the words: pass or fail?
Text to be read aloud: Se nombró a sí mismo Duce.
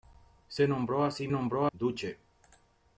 fail